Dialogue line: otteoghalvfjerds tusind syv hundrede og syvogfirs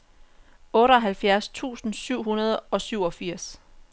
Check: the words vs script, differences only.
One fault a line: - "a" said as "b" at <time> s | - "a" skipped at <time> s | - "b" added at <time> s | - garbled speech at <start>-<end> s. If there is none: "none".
none